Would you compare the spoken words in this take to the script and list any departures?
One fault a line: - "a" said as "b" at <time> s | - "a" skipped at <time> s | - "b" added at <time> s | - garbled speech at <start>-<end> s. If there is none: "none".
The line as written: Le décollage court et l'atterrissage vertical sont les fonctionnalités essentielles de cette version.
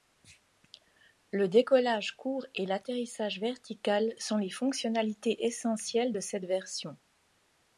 none